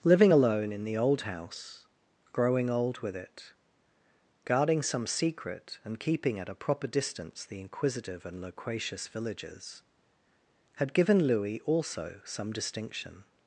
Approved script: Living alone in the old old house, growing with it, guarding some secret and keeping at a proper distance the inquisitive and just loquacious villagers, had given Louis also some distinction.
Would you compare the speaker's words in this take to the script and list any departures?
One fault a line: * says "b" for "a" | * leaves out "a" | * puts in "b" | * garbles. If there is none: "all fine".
* leaves out "old"
* puts in "old"
* leaves out "just"